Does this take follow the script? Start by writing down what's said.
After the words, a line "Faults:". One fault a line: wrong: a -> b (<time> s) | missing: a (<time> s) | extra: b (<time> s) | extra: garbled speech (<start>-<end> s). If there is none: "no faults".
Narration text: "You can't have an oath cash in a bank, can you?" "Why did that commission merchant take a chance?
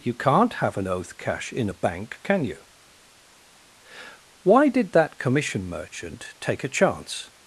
"You can't have an oath cash in a bank, can you?" "Why did that commission merchant take a chance?
Faults:
no faults